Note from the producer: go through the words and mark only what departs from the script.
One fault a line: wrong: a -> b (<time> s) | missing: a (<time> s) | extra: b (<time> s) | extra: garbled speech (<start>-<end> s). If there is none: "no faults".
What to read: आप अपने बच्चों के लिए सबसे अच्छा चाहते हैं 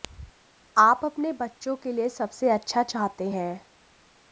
no faults